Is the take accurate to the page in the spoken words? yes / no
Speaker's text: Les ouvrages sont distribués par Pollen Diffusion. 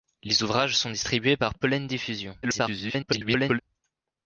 no